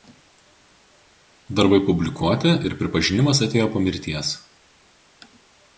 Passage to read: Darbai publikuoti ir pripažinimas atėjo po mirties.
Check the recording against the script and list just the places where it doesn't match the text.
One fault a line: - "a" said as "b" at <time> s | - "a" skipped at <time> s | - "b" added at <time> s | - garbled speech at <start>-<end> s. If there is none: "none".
none